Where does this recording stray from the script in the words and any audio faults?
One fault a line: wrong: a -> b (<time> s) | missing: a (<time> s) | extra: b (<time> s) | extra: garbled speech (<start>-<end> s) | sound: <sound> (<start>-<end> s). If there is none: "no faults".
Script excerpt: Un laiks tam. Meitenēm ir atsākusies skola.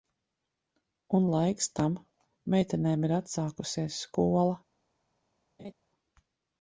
sound: laugh (5.6-5.7 s)